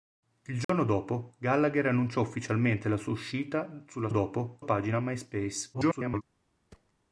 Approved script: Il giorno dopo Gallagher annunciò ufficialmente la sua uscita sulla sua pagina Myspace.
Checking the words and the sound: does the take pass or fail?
fail